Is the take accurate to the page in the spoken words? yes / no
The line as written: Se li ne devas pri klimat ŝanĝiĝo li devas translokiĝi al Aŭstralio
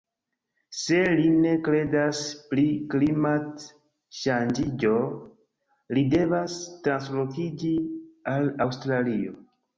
no